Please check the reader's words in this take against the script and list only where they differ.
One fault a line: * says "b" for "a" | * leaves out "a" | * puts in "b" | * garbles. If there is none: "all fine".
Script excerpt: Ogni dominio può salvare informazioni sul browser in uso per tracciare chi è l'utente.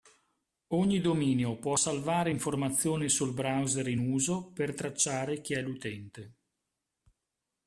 all fine